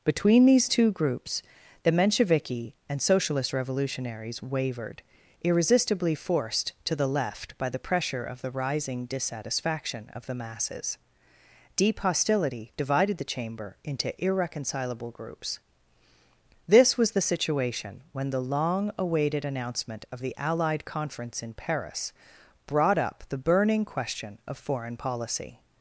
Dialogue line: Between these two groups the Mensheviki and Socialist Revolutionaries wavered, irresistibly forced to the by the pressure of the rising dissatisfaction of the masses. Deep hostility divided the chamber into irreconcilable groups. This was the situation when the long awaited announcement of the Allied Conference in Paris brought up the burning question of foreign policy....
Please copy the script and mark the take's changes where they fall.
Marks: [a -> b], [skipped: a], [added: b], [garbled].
Between these two groups the Mensheviki and Socialist Revolutionaries wavered, irresistibly forced to the [added: left] by the pressure of the rising dissatisfaction of the masses. Deep hostility divided the chamber into irreconcilable groups. This was the situation when the long awaited announcement of the Allied Conference in Paris brought up the burning question of foreign policy....